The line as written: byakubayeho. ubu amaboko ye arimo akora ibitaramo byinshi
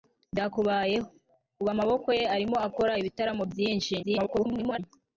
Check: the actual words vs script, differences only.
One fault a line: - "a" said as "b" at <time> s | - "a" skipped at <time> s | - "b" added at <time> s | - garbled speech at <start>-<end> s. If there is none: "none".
- garbled speech at 4.0-4.8 s